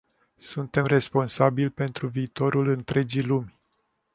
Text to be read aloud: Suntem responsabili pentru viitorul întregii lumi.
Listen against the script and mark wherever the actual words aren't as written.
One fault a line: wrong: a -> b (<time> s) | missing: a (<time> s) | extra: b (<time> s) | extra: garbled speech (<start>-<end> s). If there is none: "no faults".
no faults